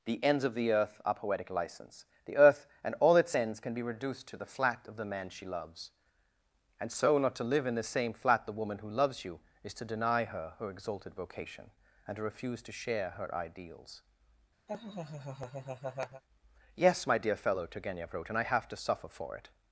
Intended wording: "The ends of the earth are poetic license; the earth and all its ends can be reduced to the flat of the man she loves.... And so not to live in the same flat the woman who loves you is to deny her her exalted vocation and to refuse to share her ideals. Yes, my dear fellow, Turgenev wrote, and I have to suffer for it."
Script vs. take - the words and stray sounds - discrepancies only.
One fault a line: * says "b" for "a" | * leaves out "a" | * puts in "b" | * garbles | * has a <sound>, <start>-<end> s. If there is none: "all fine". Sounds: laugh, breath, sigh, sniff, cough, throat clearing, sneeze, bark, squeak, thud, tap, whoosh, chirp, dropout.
* has a laugh, 14.7-16.2 s